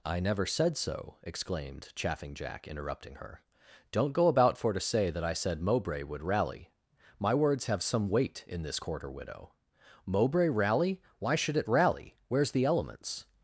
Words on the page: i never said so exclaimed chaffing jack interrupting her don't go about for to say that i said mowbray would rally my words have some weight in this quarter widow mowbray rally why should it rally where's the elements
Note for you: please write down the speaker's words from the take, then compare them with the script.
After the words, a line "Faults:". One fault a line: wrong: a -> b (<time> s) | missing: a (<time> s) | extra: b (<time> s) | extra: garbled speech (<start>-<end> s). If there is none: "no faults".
i never said so exclaimed chaffing jack interrupting her don't go about for to say that i said mowbray would rally my words have some weight in this quarter widow mowbray rally why should it rally where's the elements
Faults:
no faults